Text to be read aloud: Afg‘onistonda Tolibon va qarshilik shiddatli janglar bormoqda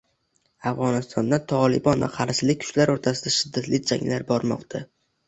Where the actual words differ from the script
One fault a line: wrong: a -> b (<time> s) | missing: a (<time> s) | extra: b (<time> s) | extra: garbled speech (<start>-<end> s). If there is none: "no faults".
extra: kuchlari o‘rtasida (2.6 s)